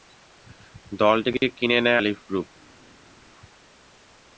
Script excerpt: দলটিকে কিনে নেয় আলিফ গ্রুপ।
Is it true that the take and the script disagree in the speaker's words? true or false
false